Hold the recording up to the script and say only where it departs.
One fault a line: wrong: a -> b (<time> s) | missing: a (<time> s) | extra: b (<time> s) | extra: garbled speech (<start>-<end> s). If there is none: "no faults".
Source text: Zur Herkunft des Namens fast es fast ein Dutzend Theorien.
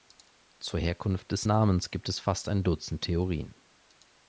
wrong: fast -> gibt (1.9 s)